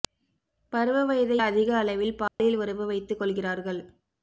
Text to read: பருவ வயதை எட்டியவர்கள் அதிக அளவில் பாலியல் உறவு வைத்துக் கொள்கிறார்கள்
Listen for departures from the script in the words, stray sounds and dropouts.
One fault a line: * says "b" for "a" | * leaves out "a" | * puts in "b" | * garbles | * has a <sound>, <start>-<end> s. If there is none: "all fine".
* leaves out "எட்டியவர்கள்"
* has a dropout, 2.3-2.4 s